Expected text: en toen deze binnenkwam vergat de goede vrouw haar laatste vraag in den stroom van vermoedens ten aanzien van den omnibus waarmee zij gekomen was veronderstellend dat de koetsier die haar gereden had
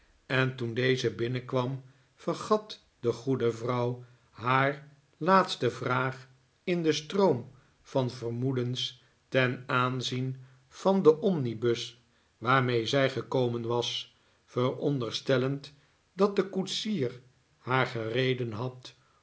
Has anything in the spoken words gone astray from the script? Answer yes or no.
yes